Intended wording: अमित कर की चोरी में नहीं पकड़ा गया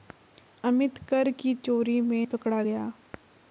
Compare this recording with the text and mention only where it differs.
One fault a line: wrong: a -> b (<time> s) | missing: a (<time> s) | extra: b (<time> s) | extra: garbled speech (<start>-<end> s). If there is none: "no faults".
missing: नहीं (2.2 s)